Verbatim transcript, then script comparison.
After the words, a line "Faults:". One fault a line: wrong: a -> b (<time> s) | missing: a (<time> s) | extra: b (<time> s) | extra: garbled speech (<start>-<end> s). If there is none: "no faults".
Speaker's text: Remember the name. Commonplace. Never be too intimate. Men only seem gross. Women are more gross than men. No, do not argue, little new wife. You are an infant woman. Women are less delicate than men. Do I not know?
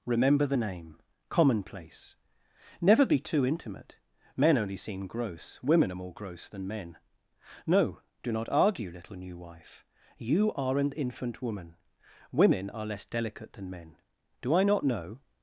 Remember the name. Commonplace. Never be too intimate. Men only seem gross. Women are more gross than men. No, do not argue, little new wife. You are an infant woman. Women are less delicate than men. Do I not know?
Faults:
no faults